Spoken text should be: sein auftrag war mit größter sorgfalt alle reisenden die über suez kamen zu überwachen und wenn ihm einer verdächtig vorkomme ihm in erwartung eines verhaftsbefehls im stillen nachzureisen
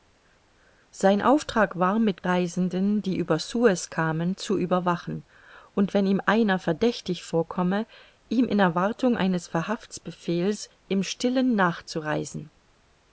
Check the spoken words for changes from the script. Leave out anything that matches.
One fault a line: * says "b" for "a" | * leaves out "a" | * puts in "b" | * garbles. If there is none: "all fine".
* leaves out "größter sorgfalt alle"